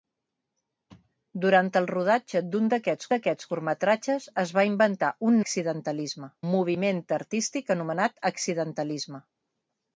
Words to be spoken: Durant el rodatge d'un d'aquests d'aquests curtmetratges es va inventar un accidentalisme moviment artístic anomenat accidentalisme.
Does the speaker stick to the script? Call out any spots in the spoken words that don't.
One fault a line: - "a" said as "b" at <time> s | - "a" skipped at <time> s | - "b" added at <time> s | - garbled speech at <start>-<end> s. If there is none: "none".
none